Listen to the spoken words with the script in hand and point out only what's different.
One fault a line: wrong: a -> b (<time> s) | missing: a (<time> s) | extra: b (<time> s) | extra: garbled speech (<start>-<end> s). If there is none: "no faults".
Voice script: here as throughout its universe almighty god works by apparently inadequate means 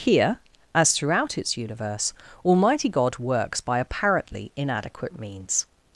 no faults